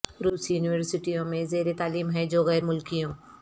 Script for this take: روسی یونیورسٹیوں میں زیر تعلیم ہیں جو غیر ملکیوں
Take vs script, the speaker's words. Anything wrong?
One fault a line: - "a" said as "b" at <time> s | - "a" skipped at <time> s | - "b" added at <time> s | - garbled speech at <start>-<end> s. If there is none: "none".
none